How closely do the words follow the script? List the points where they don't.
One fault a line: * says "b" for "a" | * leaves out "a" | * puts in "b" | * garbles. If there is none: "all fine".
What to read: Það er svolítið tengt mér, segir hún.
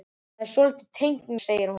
* leaves out "mér"